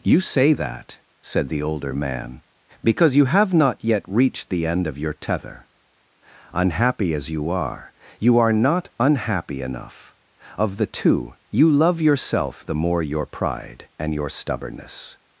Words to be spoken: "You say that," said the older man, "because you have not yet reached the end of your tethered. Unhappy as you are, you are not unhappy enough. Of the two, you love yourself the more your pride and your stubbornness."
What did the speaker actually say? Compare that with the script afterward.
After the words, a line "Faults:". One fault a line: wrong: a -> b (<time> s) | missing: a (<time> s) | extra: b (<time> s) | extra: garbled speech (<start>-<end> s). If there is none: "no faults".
"You say that," said the older man, "because you have not yet reached the end of your tether. Unhappy as you are, you are not unhappy enough. Of the two, you love yourself the more your pride and your stubbornness."
Faults:
wrong: tethered -> tether (5.1 s)